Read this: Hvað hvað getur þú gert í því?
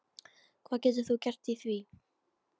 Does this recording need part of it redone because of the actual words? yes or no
yes